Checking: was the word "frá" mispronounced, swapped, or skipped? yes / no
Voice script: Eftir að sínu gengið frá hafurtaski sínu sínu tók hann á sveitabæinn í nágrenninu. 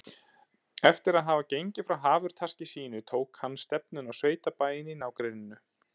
no